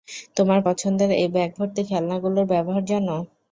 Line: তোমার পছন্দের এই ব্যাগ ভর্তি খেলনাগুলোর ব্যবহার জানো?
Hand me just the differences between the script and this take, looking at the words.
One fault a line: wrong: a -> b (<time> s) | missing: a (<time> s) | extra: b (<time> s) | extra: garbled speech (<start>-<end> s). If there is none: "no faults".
no faults